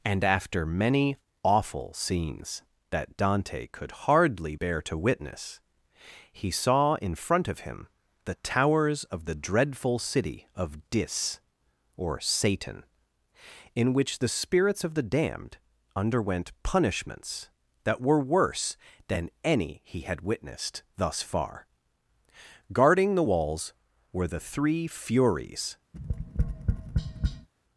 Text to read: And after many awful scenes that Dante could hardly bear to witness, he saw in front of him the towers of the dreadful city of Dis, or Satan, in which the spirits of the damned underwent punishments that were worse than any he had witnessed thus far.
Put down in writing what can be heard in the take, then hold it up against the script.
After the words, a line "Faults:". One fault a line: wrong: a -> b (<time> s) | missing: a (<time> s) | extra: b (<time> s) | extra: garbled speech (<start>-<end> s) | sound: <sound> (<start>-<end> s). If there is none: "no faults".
And after many awful scenes that Dante could hardly bear to witness, he saw in front of him the towers of the dreadful city of Dis, or Satan, in which the spirits of the damned underwent punishments that were worse than any he had witnessed thus far. Guarding the walls were the three Furies
Faults:
extra: Guarding the walls were the three Furies (22.7 s)
sound: tap (25.9-27.5 s)